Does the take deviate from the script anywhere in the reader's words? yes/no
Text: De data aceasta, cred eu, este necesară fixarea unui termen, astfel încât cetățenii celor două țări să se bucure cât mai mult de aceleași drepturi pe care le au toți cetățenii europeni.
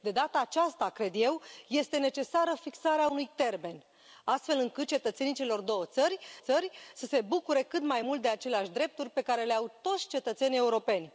yes